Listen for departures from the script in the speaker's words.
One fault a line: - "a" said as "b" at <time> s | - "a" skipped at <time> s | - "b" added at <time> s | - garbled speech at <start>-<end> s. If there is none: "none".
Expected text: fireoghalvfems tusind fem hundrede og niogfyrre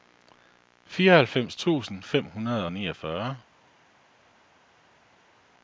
none